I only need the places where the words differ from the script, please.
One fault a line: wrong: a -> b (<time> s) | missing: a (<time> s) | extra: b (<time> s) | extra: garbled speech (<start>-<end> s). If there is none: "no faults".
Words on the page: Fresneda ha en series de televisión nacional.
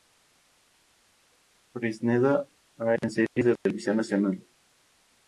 no faults